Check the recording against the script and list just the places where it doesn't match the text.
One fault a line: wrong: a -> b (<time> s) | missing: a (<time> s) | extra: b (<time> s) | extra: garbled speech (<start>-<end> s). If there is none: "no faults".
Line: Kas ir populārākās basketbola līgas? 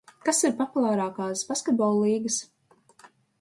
no faults